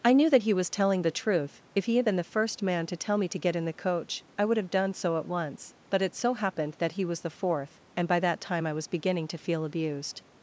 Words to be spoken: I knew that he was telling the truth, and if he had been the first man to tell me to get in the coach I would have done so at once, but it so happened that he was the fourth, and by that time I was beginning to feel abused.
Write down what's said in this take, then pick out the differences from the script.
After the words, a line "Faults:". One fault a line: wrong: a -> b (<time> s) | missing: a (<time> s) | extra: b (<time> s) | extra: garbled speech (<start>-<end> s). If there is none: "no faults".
I knew that he was telling the truth, if he had been the first man to tell me to get in the coach I would have done so at once, but it so happened that he was the fourth, and by that time I was beginning to feel abused.
Faults:
missing: and (1.6 s)